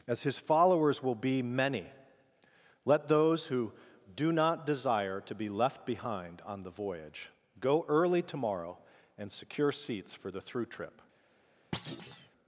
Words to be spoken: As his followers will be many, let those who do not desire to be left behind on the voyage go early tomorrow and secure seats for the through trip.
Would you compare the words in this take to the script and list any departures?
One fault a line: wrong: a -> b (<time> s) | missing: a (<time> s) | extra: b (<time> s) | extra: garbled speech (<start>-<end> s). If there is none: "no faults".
no faults